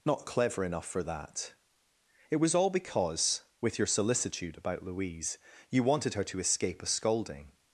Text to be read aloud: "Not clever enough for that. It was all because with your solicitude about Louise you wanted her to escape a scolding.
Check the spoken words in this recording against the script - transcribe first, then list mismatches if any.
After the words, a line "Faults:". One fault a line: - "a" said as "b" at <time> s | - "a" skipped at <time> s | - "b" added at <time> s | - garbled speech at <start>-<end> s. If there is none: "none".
"Not clever enough for that. It was all because with your solicitude about Louise you wanted her to escape a scolding.
Faults:
none